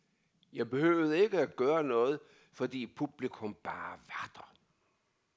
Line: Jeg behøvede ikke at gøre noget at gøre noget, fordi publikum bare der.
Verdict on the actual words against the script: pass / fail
fail